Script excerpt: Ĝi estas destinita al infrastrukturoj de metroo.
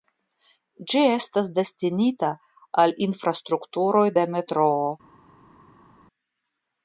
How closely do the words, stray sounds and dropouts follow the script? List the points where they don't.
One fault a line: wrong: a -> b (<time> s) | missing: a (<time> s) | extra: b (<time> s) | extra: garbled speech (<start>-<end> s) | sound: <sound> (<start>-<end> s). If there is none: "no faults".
no faults